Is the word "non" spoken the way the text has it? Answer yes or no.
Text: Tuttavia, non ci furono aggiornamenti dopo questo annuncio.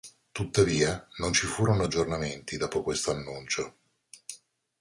yes